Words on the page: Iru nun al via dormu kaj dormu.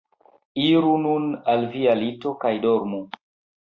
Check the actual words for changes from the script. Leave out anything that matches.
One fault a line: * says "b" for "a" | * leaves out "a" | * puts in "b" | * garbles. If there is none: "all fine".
* says "lito" for "dormu"